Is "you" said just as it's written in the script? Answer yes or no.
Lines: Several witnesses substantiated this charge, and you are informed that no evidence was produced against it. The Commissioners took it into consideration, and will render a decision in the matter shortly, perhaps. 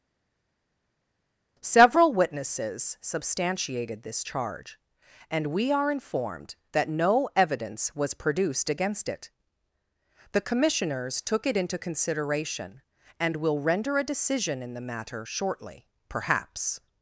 no